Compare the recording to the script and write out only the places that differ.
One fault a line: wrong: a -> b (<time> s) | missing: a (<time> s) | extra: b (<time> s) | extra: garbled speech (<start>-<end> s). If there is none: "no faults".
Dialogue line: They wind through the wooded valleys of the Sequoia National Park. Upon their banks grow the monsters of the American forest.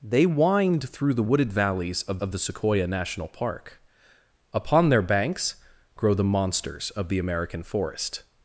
extra: of (2.2 s)